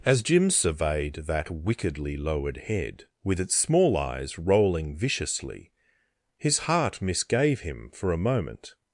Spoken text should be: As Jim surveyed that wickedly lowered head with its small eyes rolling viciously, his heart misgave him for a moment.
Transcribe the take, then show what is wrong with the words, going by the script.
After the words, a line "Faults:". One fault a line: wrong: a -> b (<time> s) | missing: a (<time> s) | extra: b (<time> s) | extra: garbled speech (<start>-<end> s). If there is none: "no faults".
As Jim surveyed that wickedly lowered head with its small eyes rolling viciously, his heart misgave him for a moment.
Faults:
no faults